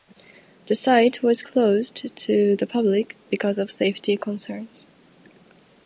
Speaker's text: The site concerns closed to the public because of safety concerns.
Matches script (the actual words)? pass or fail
fail